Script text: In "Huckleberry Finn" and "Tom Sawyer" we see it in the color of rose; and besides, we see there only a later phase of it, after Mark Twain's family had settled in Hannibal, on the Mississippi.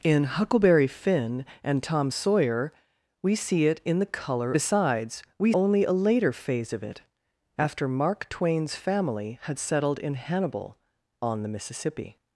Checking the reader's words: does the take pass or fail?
fail